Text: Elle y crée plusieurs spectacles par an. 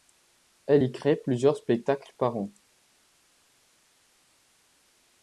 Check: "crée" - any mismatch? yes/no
no